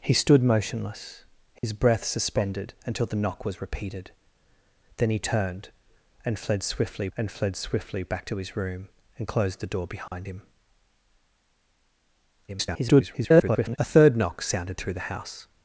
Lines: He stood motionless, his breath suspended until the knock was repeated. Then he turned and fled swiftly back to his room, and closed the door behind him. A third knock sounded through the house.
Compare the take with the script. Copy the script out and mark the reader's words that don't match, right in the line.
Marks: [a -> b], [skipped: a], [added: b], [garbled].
He stood motionless, his breath suspended until the knock was repeated. Then he turned and fled swiftly [added: and fled swiftly] back to his room, and closed the door behind him. [garbled] A third knock sounded through the house.